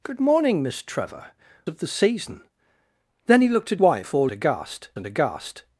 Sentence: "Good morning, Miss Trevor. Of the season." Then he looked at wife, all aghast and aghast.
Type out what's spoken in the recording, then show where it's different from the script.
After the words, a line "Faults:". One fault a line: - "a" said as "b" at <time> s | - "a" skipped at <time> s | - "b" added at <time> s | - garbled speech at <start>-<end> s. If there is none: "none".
"Good morning, Miss Trevor. Of the season." Then he looked at wife, all aghast and aghast.
Faults:
none